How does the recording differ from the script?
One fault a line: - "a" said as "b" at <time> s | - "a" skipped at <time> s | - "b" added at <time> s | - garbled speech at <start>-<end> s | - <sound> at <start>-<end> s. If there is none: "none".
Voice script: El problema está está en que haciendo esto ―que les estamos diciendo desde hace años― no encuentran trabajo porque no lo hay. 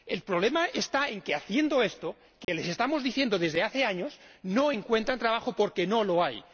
- "está" skipped at 1.1 s
- dropout at 2.4-2.5 s